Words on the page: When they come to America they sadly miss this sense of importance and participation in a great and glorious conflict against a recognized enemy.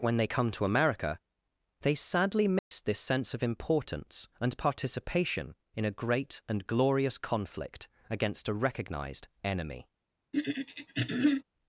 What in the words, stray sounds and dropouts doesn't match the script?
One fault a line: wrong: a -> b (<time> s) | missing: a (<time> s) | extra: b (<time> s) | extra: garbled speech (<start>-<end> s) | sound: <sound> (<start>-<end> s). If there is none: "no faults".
sound: dropout (2.6-2.7 s)
sound: throat clearing (10.3-11.4 s)